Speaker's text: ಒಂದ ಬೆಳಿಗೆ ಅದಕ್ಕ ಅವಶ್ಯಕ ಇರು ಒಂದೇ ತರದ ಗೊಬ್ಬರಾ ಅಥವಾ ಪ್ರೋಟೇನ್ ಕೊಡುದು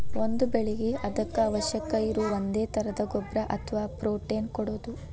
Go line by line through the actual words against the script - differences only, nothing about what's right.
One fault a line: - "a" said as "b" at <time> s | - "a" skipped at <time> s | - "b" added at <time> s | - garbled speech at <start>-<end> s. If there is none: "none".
none